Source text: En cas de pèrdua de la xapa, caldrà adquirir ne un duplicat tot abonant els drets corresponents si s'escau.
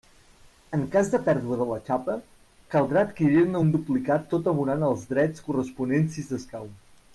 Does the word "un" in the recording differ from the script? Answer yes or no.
no